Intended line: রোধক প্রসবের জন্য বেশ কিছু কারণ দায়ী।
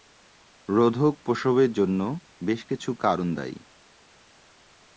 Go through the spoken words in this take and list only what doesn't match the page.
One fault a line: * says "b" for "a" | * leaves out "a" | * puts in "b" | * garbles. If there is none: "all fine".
all fine